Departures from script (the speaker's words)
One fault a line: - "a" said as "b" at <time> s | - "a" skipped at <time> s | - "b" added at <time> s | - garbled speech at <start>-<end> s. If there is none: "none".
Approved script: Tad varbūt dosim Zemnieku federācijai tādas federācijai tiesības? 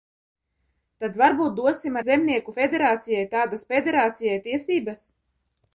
none